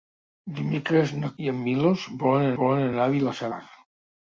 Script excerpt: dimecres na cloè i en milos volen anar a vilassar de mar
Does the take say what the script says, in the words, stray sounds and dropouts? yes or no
no